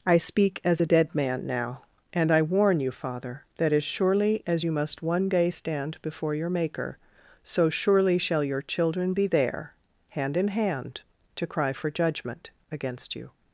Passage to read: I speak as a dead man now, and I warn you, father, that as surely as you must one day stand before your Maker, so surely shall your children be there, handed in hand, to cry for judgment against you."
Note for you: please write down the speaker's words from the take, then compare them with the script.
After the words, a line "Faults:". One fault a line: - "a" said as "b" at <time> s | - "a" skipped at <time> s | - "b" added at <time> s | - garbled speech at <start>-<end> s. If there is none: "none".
I speak as a dead man now, and I warn you, father, that as surely as you must one day stand before your Maker, so surely shall your children be there, hand in hand, to cry for judgment against you."
Faults:
- "handed" said as "hand" at 10.1 s